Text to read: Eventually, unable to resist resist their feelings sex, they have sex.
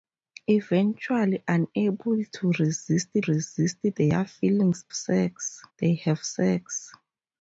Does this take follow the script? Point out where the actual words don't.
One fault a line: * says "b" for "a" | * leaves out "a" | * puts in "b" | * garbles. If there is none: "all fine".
all fine